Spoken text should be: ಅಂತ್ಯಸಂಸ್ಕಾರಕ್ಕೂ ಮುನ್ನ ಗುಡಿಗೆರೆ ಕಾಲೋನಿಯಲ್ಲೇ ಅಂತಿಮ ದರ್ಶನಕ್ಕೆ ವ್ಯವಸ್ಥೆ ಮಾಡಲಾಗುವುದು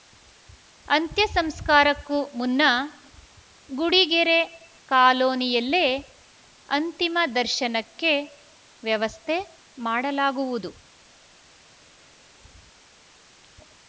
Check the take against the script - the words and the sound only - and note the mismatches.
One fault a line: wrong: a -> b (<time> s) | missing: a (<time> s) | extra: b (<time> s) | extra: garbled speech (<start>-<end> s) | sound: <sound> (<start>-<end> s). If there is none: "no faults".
no faults